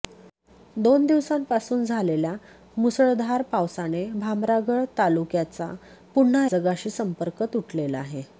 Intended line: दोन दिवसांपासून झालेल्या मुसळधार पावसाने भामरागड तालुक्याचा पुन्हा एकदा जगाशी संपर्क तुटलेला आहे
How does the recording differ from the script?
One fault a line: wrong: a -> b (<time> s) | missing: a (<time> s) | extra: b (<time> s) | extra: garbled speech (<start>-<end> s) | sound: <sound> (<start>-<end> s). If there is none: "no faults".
missing: एकदा (6.5 s)